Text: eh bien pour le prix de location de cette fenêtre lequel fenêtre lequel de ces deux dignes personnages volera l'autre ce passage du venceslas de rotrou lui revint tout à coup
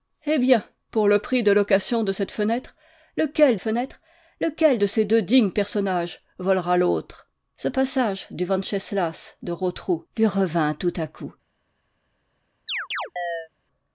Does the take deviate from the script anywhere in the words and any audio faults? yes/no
yes